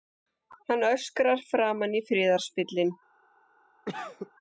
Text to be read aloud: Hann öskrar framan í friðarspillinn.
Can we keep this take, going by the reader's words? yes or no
yes